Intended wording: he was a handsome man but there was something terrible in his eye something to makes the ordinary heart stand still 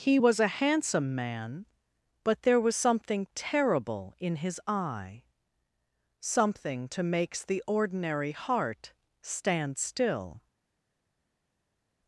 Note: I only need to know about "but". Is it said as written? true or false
true